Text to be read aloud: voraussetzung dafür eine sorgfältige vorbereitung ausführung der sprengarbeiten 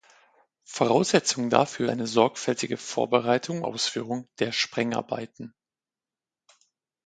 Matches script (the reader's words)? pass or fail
pass